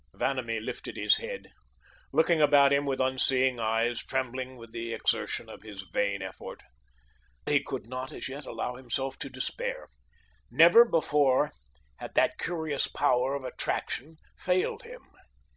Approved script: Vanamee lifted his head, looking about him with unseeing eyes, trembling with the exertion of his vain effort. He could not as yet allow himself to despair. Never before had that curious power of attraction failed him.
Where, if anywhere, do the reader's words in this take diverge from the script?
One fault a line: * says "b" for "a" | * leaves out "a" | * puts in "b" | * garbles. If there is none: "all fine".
all fine